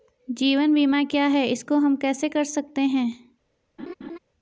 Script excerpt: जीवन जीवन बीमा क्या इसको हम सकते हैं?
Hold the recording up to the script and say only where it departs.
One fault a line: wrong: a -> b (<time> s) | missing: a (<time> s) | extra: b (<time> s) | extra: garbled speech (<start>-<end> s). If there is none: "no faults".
missing: जीवन (0.7 s)
extra: है (1.3 s)
extra: कैसे कर (1.9 s)